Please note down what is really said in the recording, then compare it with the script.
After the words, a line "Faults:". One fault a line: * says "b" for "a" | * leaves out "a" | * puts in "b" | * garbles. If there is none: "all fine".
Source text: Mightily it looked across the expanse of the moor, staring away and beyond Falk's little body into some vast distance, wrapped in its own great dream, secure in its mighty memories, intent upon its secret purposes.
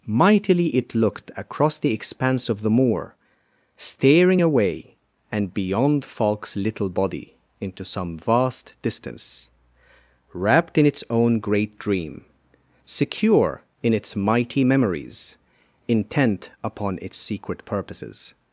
Mightily it looked across the expanse of the moor, staring away and beyond Falk's little body into some vast distance, wrapped in its own great dream, secure in its mighty memories, intent upon its secret purposes.
Faults:
all fine